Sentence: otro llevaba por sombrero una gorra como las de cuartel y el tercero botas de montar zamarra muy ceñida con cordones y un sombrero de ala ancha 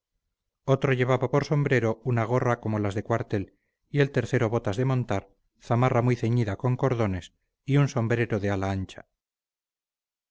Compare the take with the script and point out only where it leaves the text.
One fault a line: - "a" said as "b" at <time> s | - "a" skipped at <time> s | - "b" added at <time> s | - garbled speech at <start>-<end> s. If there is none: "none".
none